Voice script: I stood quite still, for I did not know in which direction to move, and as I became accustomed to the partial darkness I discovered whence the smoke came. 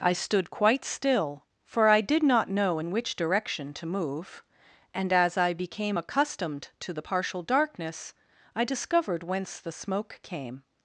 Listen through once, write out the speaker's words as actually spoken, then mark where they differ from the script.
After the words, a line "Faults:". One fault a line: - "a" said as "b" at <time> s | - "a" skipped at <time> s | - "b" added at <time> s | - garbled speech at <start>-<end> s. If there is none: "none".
I stood quite still, for I did not know in which direction to move, and as I became accustomed to the partial darkness I discovered whence the smoke came.
Faults:
none